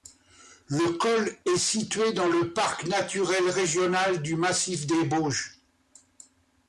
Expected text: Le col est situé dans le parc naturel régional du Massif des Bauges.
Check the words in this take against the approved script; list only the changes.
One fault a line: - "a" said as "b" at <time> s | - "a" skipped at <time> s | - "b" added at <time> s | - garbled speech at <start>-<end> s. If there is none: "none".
none